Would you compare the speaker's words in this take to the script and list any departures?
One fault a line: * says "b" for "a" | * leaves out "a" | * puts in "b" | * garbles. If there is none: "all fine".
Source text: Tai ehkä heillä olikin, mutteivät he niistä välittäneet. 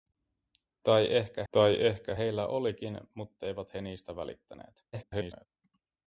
* puts in "tai ehkä"
* garbles